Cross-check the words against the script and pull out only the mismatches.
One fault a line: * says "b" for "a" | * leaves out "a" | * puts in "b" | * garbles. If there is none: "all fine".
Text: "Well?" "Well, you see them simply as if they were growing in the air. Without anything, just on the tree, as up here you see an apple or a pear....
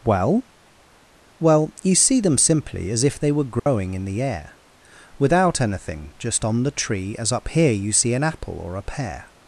all fine